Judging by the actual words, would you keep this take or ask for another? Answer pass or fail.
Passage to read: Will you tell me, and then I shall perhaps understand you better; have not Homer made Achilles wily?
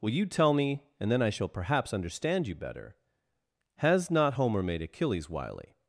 fail